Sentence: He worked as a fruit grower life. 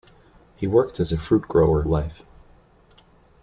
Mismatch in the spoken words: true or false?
false